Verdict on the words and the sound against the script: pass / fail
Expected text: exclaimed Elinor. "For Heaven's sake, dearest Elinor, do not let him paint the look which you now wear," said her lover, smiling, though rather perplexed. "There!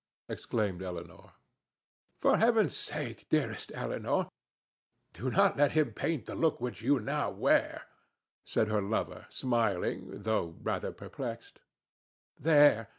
pass